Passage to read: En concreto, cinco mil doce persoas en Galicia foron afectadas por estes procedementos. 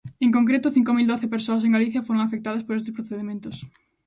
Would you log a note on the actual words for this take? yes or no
no